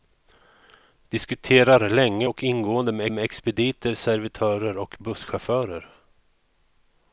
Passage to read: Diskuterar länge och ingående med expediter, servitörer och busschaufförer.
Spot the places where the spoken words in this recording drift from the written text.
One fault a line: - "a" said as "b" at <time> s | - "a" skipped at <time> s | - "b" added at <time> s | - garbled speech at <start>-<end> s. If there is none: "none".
- "med" added at 3.1 s